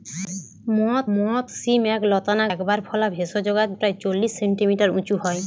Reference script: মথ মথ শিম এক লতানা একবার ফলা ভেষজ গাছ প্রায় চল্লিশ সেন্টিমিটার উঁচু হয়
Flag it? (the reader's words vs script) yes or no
no